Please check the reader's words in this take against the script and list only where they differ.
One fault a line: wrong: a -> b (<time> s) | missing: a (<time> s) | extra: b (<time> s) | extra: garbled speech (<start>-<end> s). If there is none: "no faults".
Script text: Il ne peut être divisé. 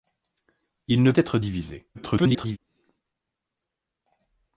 missing: peut (1.1 s)
extra: garbled speech (1.9-2.6 s)